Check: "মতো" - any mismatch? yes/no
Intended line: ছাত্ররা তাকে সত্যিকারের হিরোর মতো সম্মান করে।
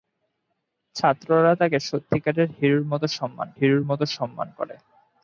no